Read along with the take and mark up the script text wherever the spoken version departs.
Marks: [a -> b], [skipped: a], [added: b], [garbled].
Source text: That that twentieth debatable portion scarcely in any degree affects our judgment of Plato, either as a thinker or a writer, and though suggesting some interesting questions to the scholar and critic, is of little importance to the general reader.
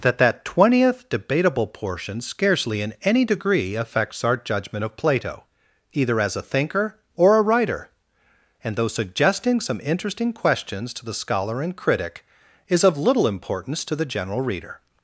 That that twentieth debatable portion scarcely in any degree affects our judgment of Plato, either as a thinker or a writer, and though suggesting some interesting questions to the scholar and critic, is of little importance to the general reader.